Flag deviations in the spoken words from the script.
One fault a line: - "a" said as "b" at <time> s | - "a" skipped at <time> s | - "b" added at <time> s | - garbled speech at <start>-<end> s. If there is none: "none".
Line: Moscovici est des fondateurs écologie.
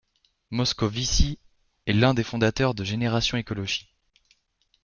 - "l'un" added at 1.9 s
- "de Génération" added at 2.7 s